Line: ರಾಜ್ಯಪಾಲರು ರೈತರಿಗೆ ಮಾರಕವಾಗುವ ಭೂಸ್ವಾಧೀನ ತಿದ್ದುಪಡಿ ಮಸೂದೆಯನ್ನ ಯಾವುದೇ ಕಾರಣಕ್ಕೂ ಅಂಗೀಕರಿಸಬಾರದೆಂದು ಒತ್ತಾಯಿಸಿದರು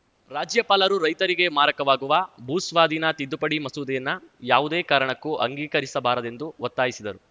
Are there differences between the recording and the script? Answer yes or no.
no